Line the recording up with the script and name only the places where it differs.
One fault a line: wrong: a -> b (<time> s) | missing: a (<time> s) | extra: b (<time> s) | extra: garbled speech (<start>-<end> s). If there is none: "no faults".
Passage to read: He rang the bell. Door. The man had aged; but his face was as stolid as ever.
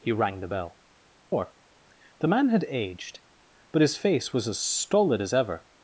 no faults